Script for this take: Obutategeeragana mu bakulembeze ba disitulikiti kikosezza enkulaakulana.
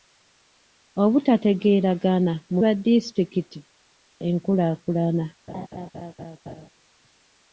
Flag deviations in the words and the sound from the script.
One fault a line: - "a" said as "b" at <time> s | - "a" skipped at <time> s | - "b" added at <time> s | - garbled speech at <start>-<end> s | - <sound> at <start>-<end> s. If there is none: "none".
- "bakulembeze" skipped at 2.6 s
- "kikosezza" skipped at 3.6 s
- laugh at 5.5-6.7 s